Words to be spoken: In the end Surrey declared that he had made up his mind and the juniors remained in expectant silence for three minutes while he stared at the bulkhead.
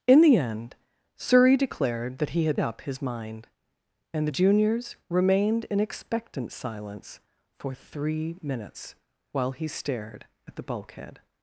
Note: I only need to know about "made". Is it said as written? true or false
false